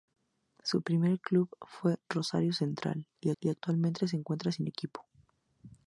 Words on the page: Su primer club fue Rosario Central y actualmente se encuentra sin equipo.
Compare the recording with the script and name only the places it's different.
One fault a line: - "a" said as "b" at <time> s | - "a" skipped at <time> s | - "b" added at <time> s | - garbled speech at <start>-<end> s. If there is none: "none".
- "y" added at 3.4 s